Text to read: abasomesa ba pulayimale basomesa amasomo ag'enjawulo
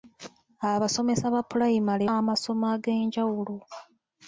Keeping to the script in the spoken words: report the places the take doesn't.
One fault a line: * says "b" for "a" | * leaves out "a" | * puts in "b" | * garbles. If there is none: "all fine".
* leaves out "basomesa"